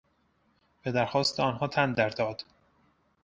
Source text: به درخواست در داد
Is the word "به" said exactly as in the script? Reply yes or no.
yes